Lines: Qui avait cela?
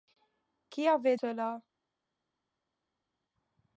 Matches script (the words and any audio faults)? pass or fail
pass